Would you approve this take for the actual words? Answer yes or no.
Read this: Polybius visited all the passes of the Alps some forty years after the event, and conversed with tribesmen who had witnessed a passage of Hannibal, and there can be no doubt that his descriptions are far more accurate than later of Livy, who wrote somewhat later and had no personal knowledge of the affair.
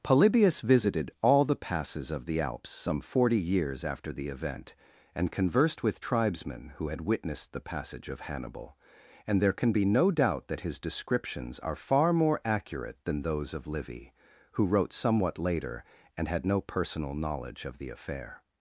no